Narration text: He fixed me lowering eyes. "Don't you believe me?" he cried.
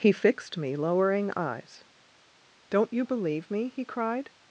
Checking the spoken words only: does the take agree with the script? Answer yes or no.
yes